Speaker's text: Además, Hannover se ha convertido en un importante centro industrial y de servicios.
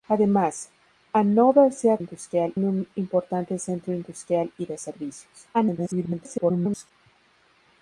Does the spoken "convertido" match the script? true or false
false